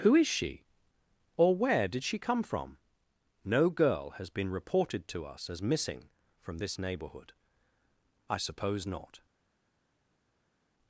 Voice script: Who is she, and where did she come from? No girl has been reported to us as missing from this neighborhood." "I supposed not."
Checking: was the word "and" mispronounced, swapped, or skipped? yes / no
yes